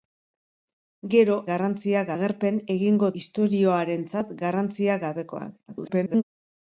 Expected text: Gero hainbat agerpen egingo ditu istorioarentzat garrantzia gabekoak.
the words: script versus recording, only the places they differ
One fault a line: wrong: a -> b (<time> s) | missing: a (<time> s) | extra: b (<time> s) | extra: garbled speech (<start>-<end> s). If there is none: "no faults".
wrong: hainbat -> garrantzia (1.5 s)
missing: ditu (3.1 s)
extra: garbled speech (5.7-6.2 s)